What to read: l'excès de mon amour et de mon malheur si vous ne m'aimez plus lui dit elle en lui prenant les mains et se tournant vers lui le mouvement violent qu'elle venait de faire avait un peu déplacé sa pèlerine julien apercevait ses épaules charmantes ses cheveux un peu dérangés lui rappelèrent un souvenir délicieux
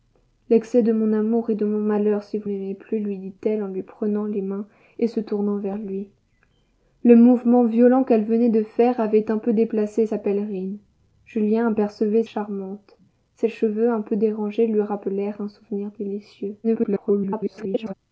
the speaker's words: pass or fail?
fail